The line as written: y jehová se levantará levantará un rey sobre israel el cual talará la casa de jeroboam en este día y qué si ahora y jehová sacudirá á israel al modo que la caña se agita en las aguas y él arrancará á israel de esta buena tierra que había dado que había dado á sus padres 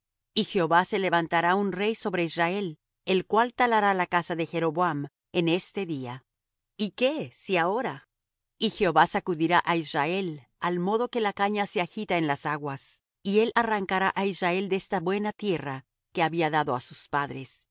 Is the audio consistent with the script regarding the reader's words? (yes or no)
no